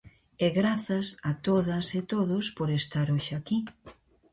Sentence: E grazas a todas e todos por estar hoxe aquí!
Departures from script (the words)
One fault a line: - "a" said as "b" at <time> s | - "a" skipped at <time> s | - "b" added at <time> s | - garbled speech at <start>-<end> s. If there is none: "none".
none